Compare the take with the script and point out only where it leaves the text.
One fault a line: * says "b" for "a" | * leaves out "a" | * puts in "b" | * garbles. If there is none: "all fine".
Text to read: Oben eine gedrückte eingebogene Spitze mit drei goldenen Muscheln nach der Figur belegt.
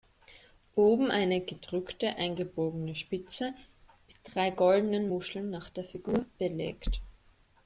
all fine